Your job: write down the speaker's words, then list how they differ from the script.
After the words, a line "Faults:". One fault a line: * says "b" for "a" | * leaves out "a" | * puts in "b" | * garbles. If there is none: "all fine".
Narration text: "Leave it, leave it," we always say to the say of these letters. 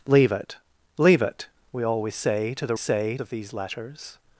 "Leave it, leave it," we always say to the say of these letters.
Faults:
all fine